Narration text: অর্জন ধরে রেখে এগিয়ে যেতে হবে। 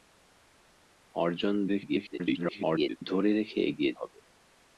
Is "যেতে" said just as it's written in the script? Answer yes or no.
no